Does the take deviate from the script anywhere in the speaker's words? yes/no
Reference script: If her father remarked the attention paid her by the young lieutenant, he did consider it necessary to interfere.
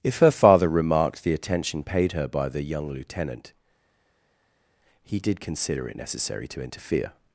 no